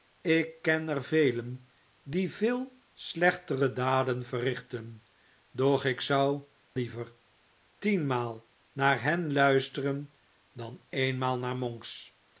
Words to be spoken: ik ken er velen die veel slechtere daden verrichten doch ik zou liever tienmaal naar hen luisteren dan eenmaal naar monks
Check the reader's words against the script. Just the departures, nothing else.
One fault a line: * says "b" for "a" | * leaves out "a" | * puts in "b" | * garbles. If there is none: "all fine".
all fine